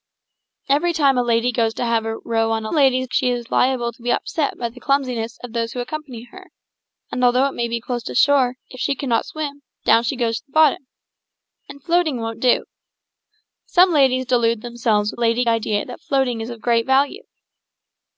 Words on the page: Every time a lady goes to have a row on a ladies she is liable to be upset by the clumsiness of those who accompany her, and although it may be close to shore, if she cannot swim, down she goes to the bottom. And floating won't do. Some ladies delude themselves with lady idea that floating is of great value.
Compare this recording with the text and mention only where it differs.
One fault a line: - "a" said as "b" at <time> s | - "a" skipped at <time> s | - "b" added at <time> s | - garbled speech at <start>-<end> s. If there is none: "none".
none